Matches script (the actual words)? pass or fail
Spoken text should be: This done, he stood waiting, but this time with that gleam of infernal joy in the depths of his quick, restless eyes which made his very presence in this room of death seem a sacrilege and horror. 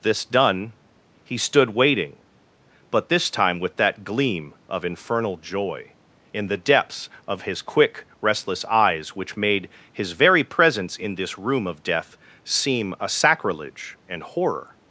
pass